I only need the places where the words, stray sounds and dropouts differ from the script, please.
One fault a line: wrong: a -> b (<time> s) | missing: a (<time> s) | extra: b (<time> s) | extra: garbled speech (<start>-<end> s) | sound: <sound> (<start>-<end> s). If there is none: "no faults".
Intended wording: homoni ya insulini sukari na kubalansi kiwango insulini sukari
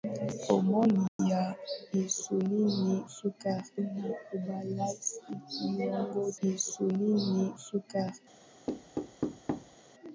sound: dropout (1.1-1.2 s)
sound: thud (8.7-9.8 s)